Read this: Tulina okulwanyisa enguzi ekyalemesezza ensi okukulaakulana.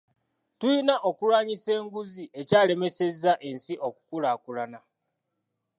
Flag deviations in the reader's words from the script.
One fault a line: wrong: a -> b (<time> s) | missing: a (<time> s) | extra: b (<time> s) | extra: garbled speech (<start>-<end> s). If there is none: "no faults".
no faults